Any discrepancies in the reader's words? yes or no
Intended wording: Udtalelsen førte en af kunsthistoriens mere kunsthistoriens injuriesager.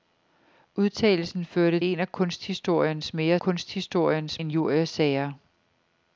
no